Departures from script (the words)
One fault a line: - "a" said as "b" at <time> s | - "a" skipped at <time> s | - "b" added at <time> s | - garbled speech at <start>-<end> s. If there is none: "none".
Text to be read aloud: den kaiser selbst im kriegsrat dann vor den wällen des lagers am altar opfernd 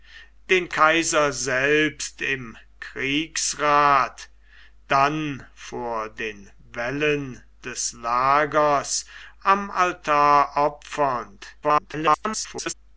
- garbled speech at 11.6-12.7 s